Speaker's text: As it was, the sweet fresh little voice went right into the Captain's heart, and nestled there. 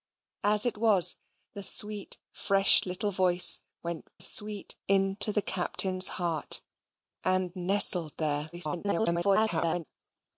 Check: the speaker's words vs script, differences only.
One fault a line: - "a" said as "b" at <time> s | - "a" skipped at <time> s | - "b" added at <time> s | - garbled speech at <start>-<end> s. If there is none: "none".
- "right" said as "sweet" at 4.2 s
- garbled speech at 8.5-9.8 s